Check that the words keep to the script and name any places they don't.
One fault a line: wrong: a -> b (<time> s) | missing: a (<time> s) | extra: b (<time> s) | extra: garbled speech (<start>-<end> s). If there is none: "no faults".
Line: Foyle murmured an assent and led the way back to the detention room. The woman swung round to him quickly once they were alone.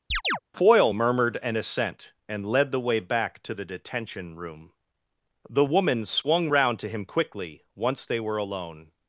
no faults